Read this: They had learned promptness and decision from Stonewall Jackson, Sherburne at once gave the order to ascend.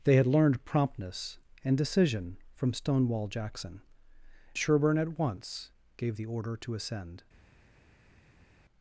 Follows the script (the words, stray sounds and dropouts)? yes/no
yes